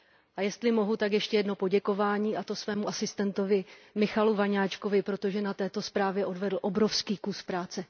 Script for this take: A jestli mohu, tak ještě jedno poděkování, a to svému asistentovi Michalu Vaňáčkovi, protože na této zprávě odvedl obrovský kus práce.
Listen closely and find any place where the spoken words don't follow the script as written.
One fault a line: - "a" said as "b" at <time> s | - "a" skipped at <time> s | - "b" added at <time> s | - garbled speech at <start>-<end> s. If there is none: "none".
none